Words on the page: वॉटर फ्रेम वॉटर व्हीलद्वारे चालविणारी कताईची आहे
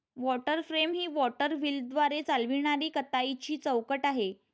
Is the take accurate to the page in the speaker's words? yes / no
no